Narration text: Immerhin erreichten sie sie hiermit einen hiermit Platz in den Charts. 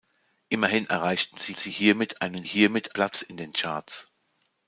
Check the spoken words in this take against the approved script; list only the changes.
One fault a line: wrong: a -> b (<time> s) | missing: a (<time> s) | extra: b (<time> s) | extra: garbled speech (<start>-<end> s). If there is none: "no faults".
no faults